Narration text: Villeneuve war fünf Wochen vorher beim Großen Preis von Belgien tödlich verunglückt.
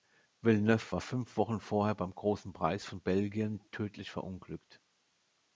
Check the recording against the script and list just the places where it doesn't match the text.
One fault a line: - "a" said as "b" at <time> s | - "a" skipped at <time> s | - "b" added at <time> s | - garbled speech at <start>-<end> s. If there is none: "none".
none